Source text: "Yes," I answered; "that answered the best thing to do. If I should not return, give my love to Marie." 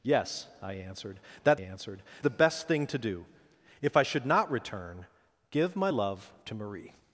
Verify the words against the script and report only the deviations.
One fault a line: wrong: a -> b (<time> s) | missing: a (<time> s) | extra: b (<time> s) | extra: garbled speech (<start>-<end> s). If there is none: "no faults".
no faults